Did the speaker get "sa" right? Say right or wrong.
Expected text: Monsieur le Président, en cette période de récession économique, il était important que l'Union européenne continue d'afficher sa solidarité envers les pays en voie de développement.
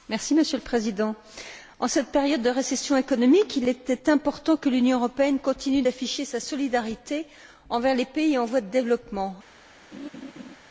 right